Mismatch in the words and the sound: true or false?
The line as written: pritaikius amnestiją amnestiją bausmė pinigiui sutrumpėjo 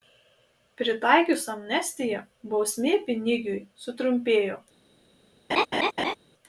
true